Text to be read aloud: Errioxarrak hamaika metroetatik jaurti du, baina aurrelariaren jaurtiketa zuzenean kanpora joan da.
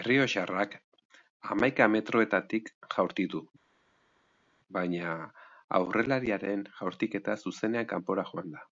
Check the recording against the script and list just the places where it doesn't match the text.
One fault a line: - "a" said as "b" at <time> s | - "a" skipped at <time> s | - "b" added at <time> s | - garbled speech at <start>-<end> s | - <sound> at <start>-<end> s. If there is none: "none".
none